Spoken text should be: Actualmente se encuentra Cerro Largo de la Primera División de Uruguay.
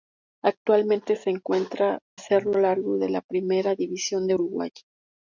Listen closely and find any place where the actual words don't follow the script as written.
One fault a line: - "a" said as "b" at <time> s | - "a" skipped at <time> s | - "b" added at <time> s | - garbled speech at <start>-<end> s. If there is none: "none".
none